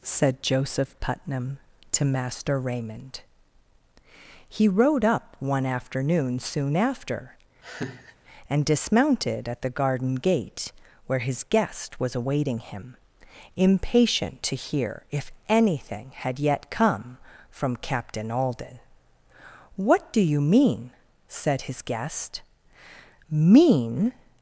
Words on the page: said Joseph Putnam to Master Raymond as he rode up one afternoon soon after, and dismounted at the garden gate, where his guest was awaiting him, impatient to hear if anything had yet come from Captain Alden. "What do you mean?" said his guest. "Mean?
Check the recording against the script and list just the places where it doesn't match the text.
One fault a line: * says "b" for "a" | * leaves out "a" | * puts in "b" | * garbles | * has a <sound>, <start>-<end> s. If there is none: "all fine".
* leaves out "as"
* has a laugh, 7.6-8.2 s